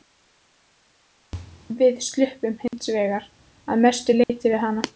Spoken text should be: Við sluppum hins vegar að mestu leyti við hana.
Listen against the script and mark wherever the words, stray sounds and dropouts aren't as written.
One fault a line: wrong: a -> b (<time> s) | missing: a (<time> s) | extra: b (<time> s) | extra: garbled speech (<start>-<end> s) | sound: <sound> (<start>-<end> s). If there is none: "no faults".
sound: dropout (2.7-2.7 s)
sound: dropout (4.2-4.3 s)